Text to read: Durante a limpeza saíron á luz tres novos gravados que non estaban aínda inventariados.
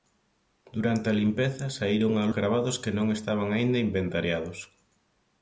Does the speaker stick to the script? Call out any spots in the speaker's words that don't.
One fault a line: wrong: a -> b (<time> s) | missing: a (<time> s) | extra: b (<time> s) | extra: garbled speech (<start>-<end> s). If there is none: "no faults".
missing: luz tres novos (2.2 s)